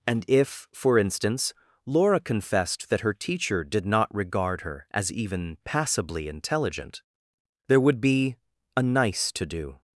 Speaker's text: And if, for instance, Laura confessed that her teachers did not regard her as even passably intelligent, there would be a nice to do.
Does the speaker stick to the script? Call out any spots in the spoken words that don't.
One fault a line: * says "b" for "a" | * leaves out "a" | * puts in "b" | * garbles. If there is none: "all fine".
* says "teacher" for "teachers"